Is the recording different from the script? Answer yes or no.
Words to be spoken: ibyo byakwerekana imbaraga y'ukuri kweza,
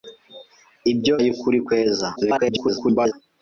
yes